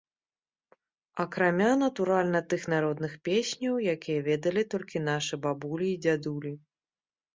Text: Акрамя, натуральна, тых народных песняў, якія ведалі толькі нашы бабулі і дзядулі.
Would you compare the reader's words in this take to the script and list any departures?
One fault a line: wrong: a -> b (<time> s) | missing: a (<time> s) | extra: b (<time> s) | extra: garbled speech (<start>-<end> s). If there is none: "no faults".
no faults